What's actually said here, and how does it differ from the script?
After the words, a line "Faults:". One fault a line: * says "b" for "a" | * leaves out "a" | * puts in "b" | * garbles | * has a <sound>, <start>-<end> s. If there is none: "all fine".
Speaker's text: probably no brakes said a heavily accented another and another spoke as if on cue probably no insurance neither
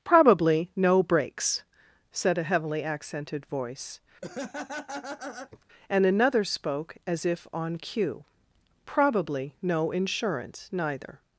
probably no brakes said a heavily accented voice and another spoke as if on cue probably no insurance neither
Faults:
* says "voice" for "another"
* has a laugh, 4.2-5.6 s